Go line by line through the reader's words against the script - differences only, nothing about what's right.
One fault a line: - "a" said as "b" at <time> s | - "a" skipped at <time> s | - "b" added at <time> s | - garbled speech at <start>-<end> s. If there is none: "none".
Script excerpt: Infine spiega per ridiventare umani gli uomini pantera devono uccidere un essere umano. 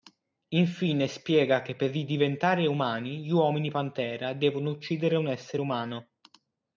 - "che" added at 1.6 s